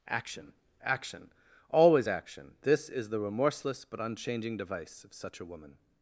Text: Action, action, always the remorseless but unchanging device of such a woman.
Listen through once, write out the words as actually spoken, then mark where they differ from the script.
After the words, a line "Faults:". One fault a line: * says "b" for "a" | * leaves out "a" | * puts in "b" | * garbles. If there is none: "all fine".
Action, action, always action, this is the remorseless but unchanging device of such a woman.
Faults:
* puts in "action this is"